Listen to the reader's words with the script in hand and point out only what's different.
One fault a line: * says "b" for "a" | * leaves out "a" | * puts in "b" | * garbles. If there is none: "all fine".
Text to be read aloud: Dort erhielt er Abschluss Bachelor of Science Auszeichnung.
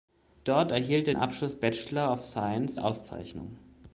all fine